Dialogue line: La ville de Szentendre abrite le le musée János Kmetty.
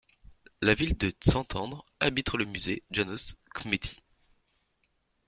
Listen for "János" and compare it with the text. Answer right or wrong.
right